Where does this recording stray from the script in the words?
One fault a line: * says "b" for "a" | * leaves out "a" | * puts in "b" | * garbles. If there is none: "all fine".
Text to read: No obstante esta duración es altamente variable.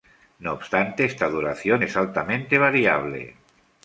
all fine